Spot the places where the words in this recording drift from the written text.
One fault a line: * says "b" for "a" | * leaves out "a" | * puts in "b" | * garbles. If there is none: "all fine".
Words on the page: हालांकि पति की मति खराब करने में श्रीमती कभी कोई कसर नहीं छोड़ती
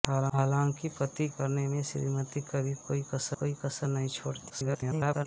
* leaves out "की मति खराब"
* puts in "कोई कसर"
* garbles